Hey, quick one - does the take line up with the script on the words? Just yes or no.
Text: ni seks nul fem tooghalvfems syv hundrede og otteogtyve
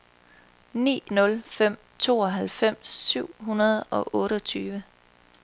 no